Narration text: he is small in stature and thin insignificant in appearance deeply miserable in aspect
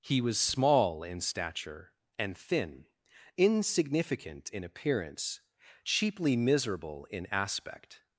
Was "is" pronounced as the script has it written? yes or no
no